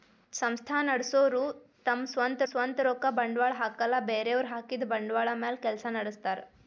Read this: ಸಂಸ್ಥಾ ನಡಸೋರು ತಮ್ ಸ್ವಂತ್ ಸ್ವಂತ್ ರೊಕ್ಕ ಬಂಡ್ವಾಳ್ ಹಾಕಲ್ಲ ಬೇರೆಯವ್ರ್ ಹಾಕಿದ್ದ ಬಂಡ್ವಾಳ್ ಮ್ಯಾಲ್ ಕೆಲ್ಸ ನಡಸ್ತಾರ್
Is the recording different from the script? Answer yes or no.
no